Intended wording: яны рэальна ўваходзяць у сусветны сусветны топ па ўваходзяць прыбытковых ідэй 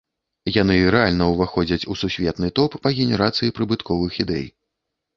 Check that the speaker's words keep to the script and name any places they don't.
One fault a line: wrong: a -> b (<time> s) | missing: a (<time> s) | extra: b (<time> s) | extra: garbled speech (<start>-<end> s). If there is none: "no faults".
missing: сусветны (2.5 s)
wrong: ўваходзяць -> генерацыі (3.0 s)